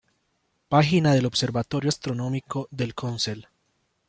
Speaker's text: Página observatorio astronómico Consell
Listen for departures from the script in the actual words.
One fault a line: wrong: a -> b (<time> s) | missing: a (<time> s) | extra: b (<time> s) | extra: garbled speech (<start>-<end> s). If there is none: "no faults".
extra: del (1.1 s)
extra: del (2.7 s)